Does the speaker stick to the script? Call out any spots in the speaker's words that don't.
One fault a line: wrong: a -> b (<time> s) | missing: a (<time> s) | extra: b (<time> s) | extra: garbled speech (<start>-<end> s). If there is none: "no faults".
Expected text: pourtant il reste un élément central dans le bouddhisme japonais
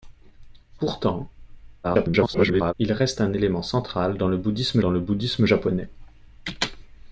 extra: garbled speech (1.8-2.7 s)
extra: dans le bouddhisme (4.8 s)